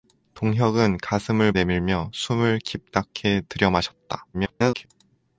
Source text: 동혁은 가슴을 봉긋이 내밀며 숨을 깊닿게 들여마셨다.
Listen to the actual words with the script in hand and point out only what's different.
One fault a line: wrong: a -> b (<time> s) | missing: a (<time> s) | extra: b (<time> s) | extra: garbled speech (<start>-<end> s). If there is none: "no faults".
missing: 봉긋이 (1.5 s)
extra: garbled speech (4.3-4.9 s)